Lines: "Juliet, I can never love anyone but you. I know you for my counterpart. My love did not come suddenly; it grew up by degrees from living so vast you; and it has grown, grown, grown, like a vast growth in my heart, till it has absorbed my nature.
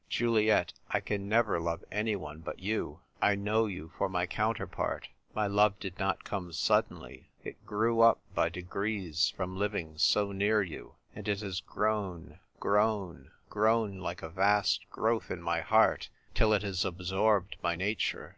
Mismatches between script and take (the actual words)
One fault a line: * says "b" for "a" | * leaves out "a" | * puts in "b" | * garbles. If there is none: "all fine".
* says "near" for "vast"